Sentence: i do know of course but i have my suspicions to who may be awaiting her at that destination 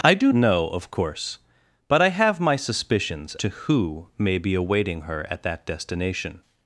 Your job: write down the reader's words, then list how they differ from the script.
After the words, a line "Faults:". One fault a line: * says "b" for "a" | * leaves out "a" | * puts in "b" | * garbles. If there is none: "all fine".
i do know of course but i have my suspicions to who may be awaiting her at that destination
Faults:
all fine